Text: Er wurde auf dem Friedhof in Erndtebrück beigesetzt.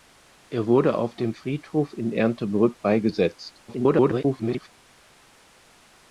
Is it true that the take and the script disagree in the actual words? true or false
true